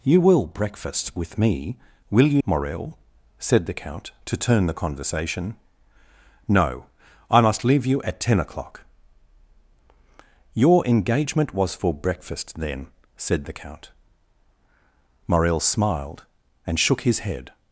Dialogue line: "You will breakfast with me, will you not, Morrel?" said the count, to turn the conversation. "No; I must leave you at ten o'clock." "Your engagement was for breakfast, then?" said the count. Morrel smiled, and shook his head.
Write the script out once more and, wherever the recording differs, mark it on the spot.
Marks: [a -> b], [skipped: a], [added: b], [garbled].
"You will breakfast with me, will you [skipped: not,] Morrel?" said the count, to turn the conversation. "No; I must leave you at ten o'clock." "Your engagement was for breakfast, then?" said the count. Morrel smiled, and shook his head.